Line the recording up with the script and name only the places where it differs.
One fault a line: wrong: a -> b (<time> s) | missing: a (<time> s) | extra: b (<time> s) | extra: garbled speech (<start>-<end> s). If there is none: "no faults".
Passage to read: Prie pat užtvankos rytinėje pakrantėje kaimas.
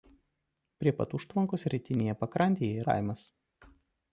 no faults